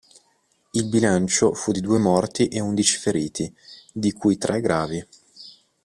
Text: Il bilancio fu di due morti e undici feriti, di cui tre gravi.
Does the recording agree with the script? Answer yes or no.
yes